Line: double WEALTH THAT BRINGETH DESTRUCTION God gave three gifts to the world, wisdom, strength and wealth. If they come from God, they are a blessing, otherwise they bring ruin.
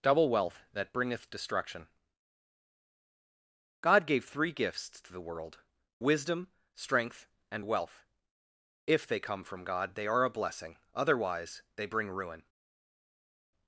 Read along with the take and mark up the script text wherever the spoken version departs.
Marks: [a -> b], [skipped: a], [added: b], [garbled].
double WEALTH THAT BRINGETH DESTRUCTION God gave three gifts to the world, wisdom, strength and wealth. If they come from God, they are a blessing, otherwise they bring ruin.